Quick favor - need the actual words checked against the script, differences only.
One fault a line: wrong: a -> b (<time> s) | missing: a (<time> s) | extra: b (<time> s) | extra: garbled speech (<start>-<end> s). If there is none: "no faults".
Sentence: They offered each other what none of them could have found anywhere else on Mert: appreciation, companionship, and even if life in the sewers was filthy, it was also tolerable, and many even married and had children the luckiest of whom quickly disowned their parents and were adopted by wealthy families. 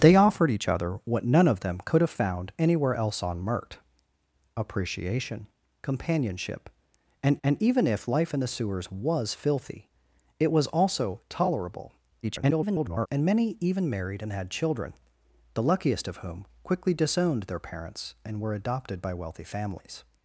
extra: and (7.4 s)
extra: garbled speech (12.2-13.1 s)